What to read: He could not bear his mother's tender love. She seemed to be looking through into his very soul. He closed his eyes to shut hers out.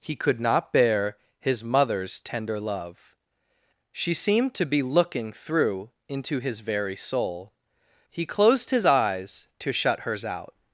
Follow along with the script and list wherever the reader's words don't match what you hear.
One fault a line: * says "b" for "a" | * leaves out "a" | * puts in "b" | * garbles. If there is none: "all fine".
all fine